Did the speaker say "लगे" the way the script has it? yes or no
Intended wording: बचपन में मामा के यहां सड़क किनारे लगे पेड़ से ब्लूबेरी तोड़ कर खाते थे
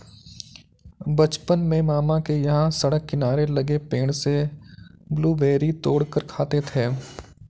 yes